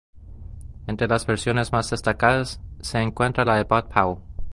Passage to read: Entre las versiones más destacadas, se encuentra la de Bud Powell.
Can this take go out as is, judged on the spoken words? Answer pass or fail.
pass